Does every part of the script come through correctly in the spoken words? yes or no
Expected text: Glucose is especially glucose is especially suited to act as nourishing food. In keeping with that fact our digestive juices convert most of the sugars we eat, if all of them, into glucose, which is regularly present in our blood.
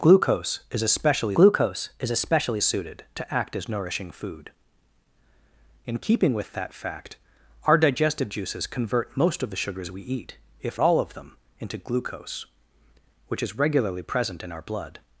yes